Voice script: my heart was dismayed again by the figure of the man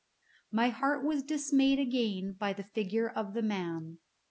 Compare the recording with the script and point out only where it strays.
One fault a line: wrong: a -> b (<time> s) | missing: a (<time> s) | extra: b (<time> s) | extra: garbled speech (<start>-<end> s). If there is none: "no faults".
no faults